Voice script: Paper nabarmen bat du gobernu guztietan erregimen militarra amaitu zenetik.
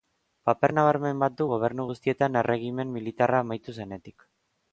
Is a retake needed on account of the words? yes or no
no